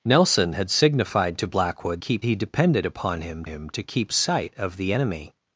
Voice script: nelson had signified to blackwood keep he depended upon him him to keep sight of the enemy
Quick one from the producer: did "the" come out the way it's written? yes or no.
yes